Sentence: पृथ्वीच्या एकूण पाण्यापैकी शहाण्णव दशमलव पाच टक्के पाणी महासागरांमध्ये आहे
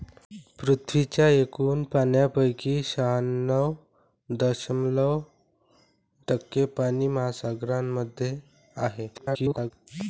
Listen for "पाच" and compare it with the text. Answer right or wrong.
wrong